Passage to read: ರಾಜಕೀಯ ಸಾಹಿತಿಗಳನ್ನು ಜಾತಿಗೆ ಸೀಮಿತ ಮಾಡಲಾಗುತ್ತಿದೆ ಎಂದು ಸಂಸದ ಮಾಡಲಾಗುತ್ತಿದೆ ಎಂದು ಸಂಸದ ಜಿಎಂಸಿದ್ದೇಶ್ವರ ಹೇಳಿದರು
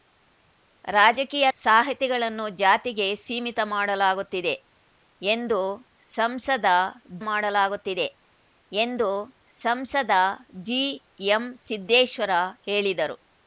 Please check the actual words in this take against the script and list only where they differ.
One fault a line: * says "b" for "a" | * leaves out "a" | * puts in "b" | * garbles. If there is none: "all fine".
all fine